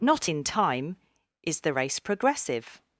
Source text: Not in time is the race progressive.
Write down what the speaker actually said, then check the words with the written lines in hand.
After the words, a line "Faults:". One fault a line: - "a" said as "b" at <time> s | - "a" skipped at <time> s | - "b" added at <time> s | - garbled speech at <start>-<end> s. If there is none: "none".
Not in time is the race progressive.
Faults:
none